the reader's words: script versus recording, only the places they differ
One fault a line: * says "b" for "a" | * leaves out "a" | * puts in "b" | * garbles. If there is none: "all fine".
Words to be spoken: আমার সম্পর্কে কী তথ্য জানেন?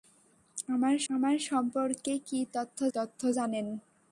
* puts in "আমার"
* puts in "তথ্য"